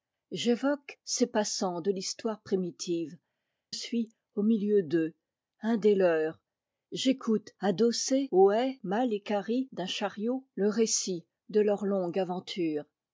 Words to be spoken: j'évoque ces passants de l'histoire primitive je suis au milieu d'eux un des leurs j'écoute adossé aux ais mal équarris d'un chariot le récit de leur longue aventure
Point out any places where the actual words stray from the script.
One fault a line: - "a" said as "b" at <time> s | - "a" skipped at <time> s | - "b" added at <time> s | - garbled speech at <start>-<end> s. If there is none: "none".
- "je" skipped at 3.2 s